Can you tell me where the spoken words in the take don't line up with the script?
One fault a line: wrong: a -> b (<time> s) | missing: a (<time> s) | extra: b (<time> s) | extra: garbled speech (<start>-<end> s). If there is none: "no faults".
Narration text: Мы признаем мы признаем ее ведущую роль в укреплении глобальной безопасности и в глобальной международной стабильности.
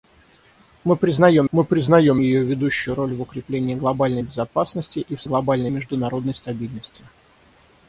no faults